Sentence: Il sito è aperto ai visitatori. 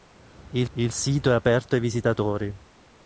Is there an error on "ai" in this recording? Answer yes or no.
no